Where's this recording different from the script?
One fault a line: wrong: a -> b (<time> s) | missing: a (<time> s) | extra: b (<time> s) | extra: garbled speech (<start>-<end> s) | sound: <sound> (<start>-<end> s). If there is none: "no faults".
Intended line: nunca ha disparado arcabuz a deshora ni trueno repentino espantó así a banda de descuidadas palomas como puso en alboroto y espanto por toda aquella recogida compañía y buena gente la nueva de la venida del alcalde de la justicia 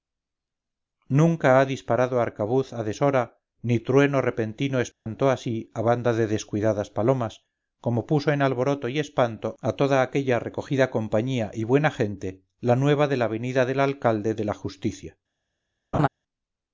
sound: dropout (4.9-5.1 s)
wrong: por -> a (9.6 s)
sound: laugh (15.9-16.1 s)